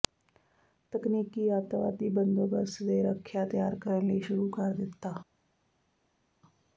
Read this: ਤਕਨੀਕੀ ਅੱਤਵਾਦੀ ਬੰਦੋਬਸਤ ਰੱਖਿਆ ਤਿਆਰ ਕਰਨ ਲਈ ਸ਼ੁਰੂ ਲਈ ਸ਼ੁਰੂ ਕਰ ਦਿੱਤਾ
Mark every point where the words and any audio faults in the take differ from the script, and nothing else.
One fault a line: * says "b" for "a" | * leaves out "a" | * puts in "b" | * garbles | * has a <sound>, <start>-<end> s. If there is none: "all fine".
* puts in "ਦੇ"
* leaves out "ਲਈ ਸ਼ੁਰੂ"